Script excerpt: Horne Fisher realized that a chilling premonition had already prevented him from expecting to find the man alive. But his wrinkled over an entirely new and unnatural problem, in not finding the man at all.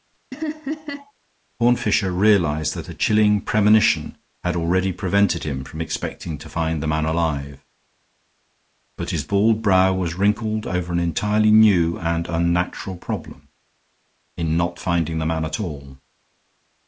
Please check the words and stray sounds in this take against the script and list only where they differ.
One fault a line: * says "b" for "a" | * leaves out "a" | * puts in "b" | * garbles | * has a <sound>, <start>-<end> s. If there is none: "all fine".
* has a laugh, 0.3-1.1 s
* puts in "bald brow was"